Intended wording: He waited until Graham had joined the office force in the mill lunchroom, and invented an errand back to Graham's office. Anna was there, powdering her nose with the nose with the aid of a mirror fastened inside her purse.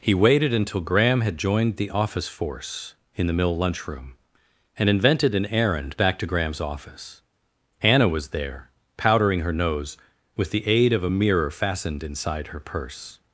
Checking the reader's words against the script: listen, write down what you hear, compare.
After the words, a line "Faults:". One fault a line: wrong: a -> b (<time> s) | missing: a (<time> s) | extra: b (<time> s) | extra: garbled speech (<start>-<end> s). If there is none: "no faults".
He waited until Graham had joined the office force in the mill lunchroom, and invented an errand back to Graham's office. Anna was there, powdering her nose with the aid of a mirror fastened inside her purse.
Faults:
missing: nose with the (10.7 s)